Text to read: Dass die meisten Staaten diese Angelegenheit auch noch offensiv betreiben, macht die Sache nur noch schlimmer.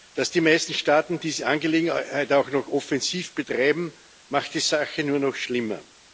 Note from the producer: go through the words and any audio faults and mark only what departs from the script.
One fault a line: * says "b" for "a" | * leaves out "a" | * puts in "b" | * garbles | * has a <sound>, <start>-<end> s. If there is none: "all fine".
all fine